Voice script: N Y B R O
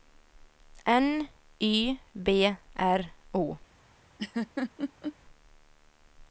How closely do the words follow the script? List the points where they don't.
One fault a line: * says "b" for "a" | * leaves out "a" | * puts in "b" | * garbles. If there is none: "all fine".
all fine